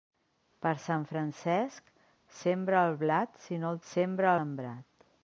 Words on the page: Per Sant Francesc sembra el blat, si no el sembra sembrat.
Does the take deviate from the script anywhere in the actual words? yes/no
no